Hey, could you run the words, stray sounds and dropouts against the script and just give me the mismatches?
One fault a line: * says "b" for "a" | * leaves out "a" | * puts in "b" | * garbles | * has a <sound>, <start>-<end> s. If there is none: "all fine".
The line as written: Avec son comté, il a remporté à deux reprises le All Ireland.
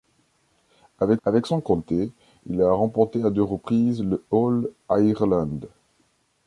* puts in "avec"